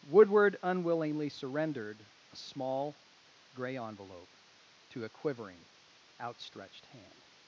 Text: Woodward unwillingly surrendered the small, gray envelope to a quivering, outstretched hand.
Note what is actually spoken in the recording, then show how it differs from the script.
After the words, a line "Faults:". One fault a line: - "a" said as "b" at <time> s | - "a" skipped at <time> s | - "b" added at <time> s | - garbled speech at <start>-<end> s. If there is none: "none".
Woodward unwillingly surrendered a small, gray envelope to a quivering, outstretched hand.
Faults:
- "the" said as "a" at 2.3 s